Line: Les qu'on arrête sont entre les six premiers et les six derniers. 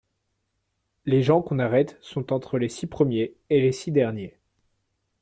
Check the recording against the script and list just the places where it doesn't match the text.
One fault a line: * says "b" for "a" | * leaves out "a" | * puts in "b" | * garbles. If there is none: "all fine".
* puts in "gens"